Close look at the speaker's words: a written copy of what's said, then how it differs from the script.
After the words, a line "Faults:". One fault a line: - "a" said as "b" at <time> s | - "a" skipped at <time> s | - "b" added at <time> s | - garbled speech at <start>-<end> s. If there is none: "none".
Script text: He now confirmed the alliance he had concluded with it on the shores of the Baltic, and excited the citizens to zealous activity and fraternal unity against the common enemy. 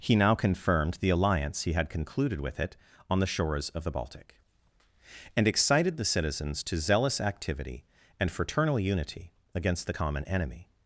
He now confirmed the alliance he had concluded with it on the shores of the Baltic, and excited the citizens to zealous activity and fraternal unity against the common enemy.
Faults:
none